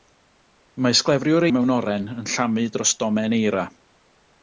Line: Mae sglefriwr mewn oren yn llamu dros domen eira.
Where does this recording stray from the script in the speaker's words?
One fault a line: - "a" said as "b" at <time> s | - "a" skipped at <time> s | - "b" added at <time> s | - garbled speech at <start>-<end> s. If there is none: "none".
none